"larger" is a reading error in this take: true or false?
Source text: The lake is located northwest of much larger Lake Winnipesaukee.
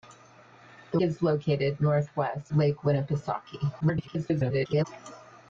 true